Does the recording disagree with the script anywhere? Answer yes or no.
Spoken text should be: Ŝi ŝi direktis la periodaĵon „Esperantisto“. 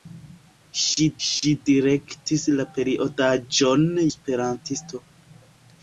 no